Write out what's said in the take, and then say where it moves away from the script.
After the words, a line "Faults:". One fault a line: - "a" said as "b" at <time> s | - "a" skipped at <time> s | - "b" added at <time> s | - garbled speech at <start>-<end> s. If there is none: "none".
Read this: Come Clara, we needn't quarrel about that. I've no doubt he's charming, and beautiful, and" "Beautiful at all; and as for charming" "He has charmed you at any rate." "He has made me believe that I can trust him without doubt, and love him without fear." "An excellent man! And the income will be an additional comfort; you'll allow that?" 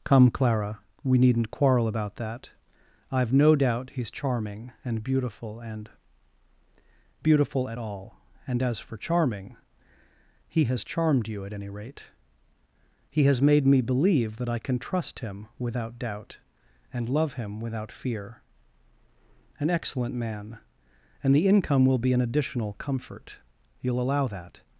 Come Clara, we needn't quarrel about that. I've no doubt he's charming, and beautiful, and" "Beautiful at all; and as for charming" "He has charmed you at any rate." "He has made me believe that I can trust him without doubt, and love him without fear." "An excellent man! And the income will be an additional comfort; you'll allow that?"
Faults:
none